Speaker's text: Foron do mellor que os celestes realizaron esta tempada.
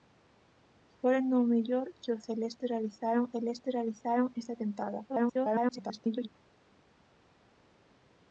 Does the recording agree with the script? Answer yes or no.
no